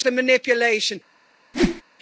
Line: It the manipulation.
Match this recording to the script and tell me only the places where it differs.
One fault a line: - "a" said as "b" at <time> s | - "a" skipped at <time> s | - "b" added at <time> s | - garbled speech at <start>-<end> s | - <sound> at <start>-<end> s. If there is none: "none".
- whoosh at 1.5-1.8 s